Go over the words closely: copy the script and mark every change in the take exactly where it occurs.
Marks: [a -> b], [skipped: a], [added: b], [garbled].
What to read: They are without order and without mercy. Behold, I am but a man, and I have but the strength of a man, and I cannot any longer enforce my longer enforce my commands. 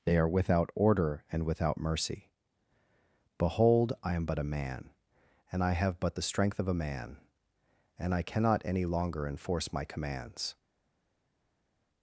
They are without order and without mercy. Behold, I am but a man, and I have but the strength of a man, and I cannot any longer enforce my [skipped: longer enforce my] commands.